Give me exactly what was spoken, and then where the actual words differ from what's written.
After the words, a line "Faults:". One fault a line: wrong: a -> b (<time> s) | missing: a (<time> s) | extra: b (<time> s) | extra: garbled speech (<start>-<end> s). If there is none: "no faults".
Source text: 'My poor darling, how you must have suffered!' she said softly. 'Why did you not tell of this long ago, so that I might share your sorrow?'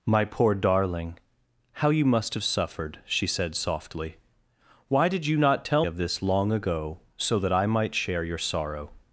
'My poor darling, how you must have suffered!' she said softly. 'Why did you not tell of this long ago, so that I might share your sorrow?'
Faults:
no faults